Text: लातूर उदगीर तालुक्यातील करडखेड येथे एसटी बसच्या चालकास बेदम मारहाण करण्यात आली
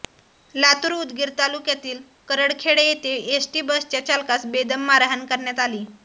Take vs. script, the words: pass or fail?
pass